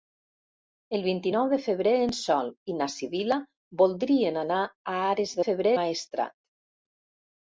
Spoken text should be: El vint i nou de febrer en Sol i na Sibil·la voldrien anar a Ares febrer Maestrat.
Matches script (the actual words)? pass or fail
pass